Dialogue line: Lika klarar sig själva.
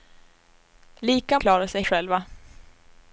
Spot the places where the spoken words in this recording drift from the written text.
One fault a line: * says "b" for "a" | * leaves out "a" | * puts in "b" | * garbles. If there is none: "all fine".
all fine